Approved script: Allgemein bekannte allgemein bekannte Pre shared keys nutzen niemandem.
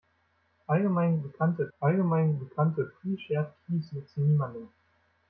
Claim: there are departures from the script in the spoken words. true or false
false